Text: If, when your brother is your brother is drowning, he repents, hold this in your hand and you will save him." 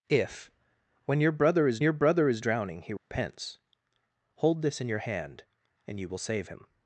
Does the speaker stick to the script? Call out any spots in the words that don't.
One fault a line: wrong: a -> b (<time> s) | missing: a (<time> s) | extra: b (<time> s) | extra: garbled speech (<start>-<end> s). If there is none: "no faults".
no faults